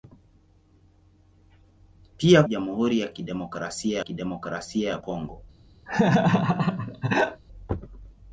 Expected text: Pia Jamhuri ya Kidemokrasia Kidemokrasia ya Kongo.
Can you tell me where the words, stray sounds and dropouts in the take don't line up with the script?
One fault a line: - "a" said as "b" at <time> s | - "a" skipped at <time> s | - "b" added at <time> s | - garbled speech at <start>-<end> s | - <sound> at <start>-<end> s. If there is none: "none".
- laugh at 5.9-7.4 s